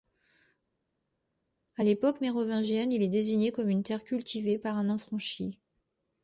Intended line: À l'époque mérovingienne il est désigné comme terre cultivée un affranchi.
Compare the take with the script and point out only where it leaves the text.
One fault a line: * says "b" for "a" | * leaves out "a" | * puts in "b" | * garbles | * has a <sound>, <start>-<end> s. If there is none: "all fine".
* puts in "une"
* puts in "par"